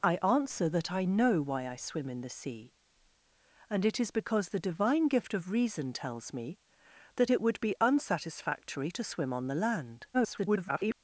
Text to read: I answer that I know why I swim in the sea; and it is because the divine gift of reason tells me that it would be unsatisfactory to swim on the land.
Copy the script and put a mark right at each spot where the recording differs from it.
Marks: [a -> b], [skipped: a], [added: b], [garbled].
I answer that I know why I swim in the sea; and it is because the divine gift of reason tells me that it would be unsatisfactory to swim on the land. [garbled]